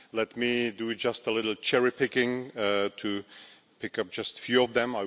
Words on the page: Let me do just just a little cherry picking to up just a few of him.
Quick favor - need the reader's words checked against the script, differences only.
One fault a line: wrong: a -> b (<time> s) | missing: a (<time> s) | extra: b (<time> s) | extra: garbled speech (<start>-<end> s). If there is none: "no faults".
missing: just (1.3 s)
extra: pick (3.8 s)
wrong: him -> them (4.7 s)